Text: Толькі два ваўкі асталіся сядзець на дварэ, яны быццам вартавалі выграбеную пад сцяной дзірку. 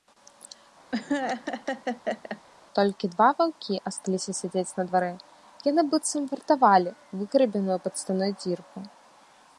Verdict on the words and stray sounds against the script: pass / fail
fail